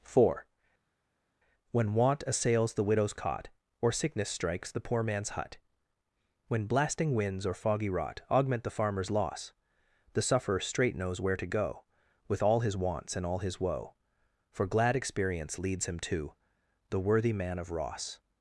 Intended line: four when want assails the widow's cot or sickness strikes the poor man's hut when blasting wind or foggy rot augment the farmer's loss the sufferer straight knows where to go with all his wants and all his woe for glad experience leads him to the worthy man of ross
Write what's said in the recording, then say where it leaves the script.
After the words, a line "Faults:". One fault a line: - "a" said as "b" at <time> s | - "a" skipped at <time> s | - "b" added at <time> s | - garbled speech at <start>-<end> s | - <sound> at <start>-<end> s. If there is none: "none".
four when want assails the widow's cot or sickness strikes the poor man's hut when blasting winds or foggy rot augment the farmer's loss the sufferer straight knows where to go with all his wants and all his woe for glad experience leads him to the worthy man of ross
Faults:
- "wind" said as "winds" at 7.1 s